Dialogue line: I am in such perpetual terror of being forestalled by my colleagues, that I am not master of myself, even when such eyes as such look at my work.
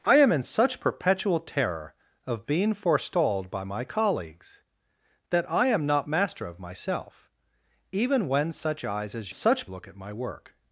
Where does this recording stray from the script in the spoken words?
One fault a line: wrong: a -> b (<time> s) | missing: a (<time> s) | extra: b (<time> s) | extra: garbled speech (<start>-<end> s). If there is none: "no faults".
no faults